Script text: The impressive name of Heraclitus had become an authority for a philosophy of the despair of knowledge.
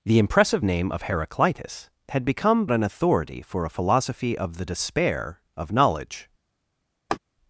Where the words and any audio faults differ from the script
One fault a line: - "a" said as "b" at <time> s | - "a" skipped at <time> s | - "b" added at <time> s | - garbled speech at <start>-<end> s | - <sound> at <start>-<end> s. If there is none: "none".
- laugh at 7.1-7.2 s